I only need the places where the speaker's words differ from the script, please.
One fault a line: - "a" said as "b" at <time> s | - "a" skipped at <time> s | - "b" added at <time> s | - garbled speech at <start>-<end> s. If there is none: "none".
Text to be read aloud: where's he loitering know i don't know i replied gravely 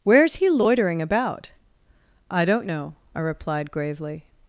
- "know" said as "about" at 1.0 s